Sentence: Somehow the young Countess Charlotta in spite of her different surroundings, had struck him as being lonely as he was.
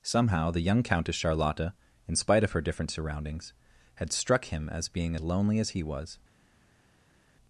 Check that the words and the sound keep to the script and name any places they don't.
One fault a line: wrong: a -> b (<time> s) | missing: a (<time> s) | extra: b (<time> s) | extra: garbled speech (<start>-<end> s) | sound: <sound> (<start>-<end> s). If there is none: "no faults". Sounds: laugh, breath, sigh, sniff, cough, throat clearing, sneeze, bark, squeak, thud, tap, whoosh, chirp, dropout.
no faults